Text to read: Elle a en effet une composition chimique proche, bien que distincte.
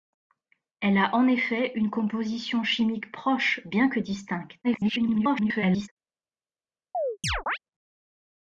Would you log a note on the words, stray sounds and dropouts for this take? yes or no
yes